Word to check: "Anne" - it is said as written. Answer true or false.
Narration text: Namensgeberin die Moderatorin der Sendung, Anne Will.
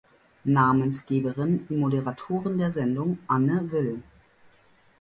true